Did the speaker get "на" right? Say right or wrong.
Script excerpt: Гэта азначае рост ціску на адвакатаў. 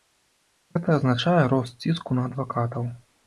right